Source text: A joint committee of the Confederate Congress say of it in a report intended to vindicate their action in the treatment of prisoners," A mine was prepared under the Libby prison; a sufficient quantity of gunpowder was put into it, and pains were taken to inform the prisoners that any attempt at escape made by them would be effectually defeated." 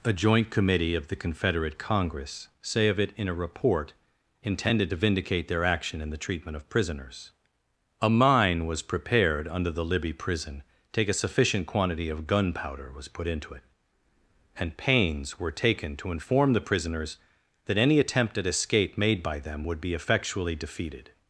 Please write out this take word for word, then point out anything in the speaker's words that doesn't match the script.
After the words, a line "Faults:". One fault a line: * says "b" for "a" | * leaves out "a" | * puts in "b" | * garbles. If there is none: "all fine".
A joint committee of the Confederate Congress say of it in a report intended to vindicate their action in the treatment of prisoners," A mine was prepared under the Libby prison; take a sufficient quantity of gunpowder was put into it, and pains were taken to inform the prisoners that any attempt at escape made by them would be effectually defeated."
Faults:
* puts in "take"